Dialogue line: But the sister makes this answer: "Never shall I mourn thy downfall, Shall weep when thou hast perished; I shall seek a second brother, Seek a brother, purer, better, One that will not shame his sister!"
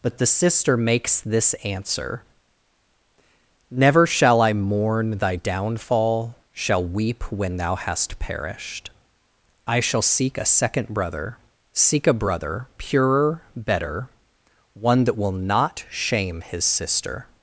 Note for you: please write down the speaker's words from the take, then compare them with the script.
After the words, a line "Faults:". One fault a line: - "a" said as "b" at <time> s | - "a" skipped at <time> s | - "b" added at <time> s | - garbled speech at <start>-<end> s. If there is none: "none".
But the sister makes this answer: "Never shall I mourn thy downfall, Shall weep when thou hast perished; I shall seek a second brother, Seek a brother, purer, better, One that will not shame his sister!"
Faults:
none